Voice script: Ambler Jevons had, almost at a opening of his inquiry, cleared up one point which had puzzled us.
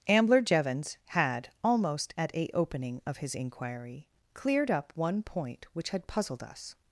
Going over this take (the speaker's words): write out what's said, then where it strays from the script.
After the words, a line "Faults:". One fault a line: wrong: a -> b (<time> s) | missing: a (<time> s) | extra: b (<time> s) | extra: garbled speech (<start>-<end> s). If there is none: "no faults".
Ambler Jevons had, almost at a opening of his inquiry, cleared up one point which had puzzled us.
Faults:
no faults